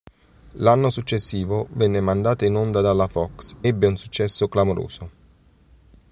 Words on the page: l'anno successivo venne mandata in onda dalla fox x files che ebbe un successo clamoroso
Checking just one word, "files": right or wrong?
wrong